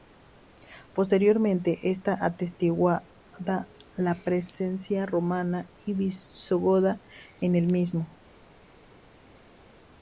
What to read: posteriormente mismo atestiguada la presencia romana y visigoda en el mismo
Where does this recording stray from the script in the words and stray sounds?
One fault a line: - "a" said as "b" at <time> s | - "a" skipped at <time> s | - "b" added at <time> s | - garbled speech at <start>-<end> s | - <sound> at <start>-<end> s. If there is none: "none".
- "mismo" said as "está" at 1.9 s